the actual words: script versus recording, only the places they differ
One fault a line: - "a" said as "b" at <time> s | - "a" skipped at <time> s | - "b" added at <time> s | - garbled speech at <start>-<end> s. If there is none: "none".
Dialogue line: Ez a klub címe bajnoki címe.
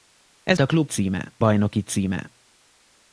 none